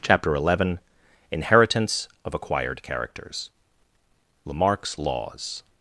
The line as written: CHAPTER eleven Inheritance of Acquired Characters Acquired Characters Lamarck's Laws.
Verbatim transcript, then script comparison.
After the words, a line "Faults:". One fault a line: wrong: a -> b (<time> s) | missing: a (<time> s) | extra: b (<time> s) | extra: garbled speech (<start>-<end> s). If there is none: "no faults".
CHAPTER eleven Inheritance of Acquired Characters Lamarck's Laws.
Faults:
missing: Acquired Characters (3.5 s)